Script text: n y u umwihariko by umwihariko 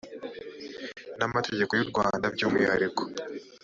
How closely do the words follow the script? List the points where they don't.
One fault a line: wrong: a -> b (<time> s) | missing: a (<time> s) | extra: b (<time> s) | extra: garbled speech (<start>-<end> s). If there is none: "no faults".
extra: amategeko (1.3 s)
wrong: umwihariko -> rwanda (1.9 s)